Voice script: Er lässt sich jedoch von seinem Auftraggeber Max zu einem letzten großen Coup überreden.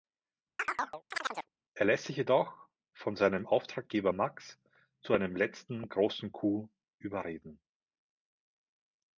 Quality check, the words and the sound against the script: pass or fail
fail